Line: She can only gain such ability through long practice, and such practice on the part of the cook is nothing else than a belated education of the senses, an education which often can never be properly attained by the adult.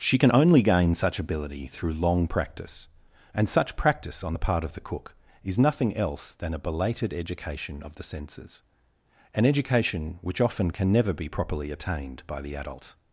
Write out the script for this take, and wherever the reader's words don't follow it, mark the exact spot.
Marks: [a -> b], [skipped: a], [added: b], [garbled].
She can only gain such ability through long practice, and such practice on the part of the cook is nothing else than a belated education of the senses, an education which often can never be properly attained by the adult.